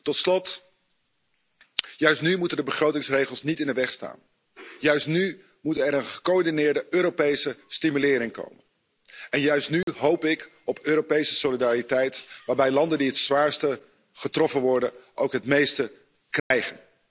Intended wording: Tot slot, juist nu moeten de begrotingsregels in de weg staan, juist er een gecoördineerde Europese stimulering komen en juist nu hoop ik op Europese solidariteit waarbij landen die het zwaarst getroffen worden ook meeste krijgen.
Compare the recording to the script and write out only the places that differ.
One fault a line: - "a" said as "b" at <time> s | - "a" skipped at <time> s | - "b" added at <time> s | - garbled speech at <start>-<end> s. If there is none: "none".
- "niet" added at 3.4 s
- "nu moet" added at 5.1 s
- "het" added at 15.3 s